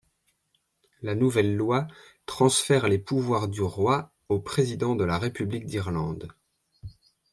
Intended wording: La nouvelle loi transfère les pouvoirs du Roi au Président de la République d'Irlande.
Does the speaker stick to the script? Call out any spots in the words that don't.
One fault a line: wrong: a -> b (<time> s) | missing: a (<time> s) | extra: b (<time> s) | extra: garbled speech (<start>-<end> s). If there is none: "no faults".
no faults